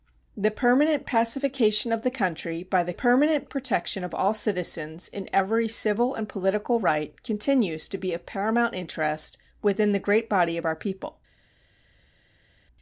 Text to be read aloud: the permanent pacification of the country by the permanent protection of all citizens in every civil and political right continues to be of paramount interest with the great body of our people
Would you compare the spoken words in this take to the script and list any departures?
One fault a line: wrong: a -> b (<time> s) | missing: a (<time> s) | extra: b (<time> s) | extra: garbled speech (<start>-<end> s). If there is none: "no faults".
no faults